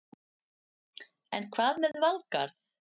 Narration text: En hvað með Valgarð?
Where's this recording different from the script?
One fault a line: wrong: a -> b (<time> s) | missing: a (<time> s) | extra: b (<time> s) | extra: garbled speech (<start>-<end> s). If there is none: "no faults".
no faults